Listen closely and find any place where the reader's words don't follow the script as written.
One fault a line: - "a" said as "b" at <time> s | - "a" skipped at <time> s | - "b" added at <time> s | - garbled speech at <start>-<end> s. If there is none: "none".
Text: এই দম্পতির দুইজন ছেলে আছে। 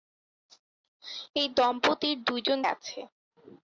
- "ছেলে" skipped at 2.6 s